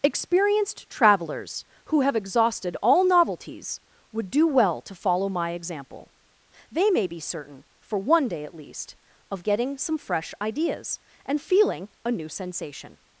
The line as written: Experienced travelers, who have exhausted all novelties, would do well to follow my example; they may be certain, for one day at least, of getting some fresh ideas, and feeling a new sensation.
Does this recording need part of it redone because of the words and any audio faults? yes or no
no